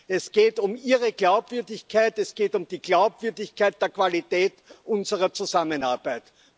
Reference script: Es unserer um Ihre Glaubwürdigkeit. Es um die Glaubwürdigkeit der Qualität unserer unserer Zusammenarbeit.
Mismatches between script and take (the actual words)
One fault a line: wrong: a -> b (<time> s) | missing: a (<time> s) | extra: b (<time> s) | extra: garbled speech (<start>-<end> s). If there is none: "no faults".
wrong: unserer -> geht (0.3 s)
extra: geht (2.4 s)
missing: unserer (5.3 s)